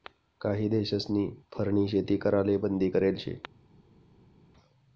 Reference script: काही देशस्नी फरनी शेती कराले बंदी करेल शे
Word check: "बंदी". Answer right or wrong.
right